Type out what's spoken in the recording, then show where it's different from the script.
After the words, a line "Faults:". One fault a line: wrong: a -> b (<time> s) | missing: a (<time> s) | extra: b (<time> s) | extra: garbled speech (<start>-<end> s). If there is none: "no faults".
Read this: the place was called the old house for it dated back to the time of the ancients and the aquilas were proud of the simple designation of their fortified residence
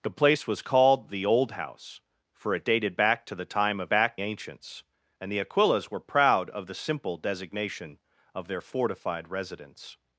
the place was called the old house for it dated back to the time of back ancients and the aquilas were proud of the simple designation of their fortified residence
Faults:
wrong: the -> back (3.9 s)